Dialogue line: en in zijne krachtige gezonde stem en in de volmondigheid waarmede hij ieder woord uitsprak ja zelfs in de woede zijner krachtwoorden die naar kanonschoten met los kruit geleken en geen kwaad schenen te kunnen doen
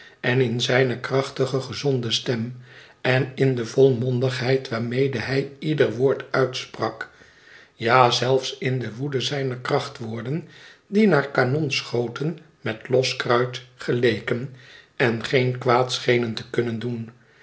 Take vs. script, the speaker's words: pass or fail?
pass